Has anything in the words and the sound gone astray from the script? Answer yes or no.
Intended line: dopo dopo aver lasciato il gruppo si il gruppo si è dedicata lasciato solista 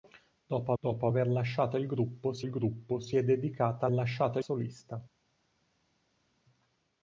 no